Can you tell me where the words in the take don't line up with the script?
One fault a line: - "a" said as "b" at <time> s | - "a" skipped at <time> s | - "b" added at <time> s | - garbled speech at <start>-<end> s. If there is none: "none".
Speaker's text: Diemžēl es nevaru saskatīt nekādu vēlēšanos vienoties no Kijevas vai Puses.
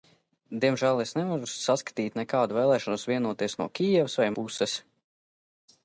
none